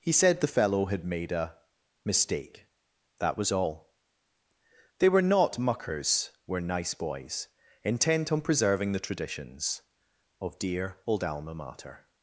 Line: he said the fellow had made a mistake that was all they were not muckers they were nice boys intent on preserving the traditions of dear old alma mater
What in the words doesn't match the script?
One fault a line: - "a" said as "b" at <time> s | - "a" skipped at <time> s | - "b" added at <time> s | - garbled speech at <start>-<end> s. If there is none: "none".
- "they" skipped at 6.3 s